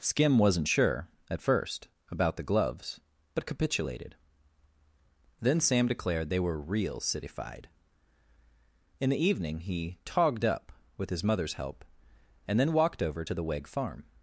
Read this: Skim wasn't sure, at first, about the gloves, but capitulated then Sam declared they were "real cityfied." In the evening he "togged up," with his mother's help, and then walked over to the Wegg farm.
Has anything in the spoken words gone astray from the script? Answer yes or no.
no